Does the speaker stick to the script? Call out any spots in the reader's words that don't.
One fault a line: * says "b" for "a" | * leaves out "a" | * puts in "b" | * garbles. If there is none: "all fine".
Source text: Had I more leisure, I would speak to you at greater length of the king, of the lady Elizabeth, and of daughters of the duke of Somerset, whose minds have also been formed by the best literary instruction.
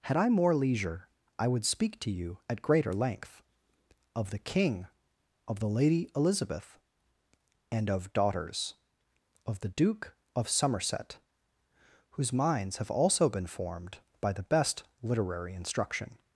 all fine